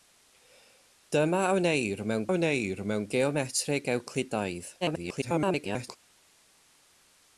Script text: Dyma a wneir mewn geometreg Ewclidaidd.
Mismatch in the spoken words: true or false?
true